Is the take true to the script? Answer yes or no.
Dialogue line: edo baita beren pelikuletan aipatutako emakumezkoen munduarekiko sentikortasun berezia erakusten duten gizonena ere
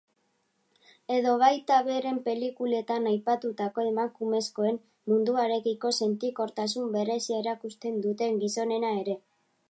yes